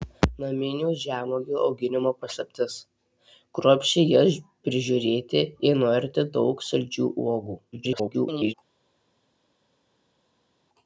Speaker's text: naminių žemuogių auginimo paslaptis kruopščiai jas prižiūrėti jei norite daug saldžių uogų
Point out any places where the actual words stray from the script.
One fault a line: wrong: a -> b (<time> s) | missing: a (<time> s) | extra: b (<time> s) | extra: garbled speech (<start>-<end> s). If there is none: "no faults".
extra: garbled speech (7.7-8.5 s)